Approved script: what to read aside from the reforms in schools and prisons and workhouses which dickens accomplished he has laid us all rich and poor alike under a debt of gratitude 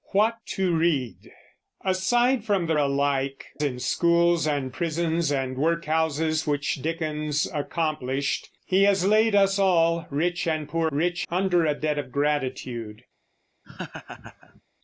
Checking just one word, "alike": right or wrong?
wrong